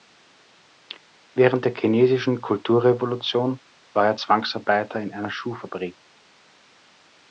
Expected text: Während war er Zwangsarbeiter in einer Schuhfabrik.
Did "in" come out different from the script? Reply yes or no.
no